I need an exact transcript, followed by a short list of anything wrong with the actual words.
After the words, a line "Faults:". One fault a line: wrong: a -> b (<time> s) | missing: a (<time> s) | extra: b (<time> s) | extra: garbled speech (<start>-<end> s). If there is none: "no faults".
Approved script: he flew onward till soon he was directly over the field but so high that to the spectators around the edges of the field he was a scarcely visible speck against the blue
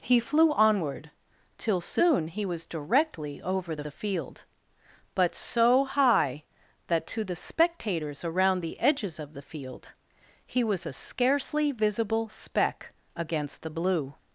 he flew onward till soon he was directly over the the field but so high that to the spectators around the edges of the field he was a scarcely visible speck against the blue
Faults:
extra: the (3.8 s)